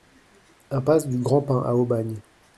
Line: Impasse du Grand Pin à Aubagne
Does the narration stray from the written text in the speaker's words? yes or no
no